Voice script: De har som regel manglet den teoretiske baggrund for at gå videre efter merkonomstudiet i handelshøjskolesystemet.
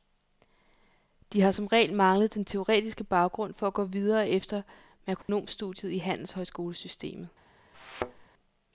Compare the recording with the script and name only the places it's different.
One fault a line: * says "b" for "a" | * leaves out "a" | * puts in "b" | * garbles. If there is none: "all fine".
all fine